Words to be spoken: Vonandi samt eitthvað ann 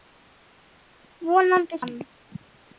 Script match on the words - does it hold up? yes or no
no